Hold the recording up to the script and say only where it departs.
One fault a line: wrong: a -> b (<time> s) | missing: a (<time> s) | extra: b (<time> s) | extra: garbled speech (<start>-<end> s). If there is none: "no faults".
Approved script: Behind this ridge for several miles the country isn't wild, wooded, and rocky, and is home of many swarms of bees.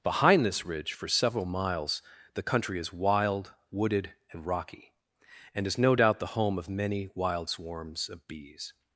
wrong: isn't -> is (2.8 s)
extra: no doubt the (5.8 s)
extra: wild (7.1 s)